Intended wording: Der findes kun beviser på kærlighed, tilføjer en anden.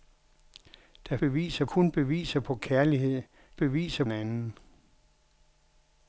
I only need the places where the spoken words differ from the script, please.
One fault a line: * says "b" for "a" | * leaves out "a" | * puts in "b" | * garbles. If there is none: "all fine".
* says "beviser" for "findes"
* says "beviser" for "tilføjer"